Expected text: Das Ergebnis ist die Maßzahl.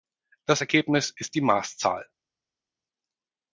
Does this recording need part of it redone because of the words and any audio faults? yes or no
no